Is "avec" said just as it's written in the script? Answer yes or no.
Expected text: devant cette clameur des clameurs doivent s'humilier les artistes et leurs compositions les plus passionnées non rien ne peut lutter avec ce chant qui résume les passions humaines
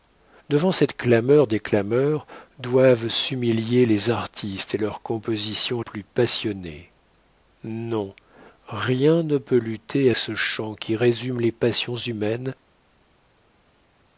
no